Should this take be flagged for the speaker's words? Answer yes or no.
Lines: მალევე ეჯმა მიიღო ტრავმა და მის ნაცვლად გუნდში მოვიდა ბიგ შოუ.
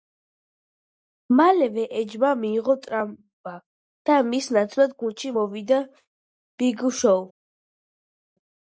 no